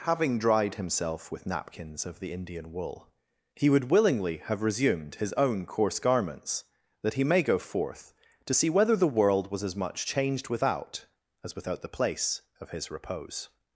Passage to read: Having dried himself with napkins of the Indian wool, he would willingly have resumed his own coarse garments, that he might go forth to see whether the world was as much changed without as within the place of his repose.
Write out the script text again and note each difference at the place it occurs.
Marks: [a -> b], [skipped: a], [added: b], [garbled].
Having dried himself with napkins of the Indian wool, he would willingly have resumed his own coarse garments, that he [might -> may] go forth to see whether the world was as much changed without as [within -> without] the place of his repose.